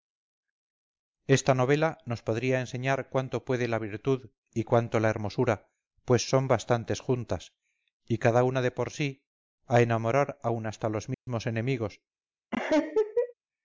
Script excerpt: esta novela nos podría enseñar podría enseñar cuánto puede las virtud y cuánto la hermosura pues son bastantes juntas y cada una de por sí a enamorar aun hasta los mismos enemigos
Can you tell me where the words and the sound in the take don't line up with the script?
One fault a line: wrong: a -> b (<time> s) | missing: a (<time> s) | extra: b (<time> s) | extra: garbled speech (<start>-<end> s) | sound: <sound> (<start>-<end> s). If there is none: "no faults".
missing: podría enseñar (3.1 s)
wrong: las -> la (3.7 s)
sound: dropout (11.1-11.3 s)
sound: laugh (12.5-13.3 s)